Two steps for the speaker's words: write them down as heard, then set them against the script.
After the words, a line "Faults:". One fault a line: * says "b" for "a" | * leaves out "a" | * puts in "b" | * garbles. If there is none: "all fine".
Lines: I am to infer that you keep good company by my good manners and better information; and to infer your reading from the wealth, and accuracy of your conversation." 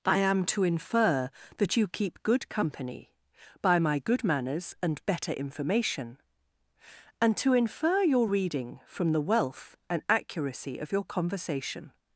I am to infer that you keep good company by my good manners and better information; and to infer your reading from the wealth, and accuracy of your conversation."
Faults:
all fine